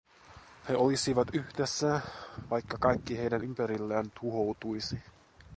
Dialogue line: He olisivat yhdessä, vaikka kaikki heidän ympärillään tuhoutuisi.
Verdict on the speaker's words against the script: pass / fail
pass